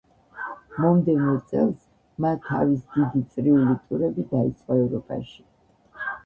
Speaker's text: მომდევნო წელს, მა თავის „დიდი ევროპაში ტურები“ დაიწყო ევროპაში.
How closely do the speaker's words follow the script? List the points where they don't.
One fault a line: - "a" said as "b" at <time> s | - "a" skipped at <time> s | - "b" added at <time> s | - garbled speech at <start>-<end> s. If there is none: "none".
- "ევროპაში" said as "წრიული" at 3.4 s